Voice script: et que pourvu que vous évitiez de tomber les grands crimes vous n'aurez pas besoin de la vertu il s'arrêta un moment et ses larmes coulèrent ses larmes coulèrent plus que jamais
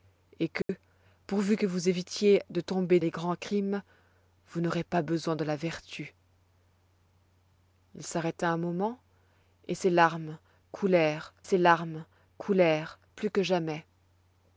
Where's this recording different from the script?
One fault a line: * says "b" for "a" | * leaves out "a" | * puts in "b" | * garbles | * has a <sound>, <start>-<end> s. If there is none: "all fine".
* has a dropout, 0.6-0.7 s